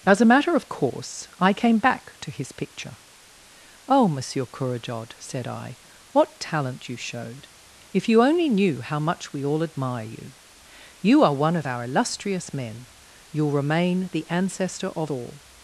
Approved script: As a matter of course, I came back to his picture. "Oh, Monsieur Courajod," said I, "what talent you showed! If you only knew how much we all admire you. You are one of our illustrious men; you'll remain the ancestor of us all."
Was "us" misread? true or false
true